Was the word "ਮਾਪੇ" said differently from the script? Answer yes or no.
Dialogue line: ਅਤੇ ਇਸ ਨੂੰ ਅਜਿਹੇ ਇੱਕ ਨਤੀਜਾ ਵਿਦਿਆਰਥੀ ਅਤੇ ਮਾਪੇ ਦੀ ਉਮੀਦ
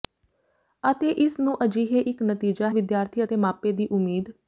no